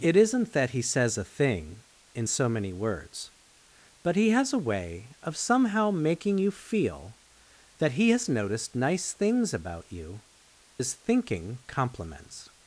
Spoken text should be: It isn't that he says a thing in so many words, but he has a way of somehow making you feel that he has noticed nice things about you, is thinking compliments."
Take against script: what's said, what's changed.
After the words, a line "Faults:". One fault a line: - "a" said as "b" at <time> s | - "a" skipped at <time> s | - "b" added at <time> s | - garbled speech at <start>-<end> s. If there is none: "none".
It isn't that he says a thing in so many words, but he has a way of somehow making you feel that he has noticed nice things about you, is thinking compliments."
Faults:
none